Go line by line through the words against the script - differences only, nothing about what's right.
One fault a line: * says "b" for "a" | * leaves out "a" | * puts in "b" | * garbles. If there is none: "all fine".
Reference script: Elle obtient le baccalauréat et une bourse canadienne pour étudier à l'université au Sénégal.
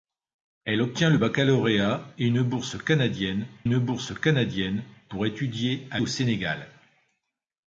* puts in "une bourse canadienne"
* leaves out "l'université"